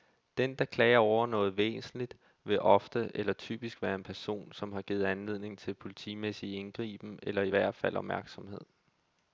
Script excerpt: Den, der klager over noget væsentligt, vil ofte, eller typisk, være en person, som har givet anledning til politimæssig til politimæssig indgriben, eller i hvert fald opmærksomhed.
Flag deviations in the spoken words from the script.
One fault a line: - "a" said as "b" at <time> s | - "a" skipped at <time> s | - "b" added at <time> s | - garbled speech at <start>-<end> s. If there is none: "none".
- "til politimæssig" skipped at 6.5 s